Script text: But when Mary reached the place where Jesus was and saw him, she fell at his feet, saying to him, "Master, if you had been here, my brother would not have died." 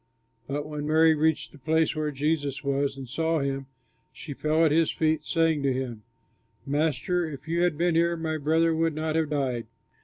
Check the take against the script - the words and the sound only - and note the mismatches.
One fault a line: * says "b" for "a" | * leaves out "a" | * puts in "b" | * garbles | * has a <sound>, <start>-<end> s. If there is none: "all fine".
all fine